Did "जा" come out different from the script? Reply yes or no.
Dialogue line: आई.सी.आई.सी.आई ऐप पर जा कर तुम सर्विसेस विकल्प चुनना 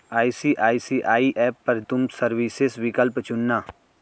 yes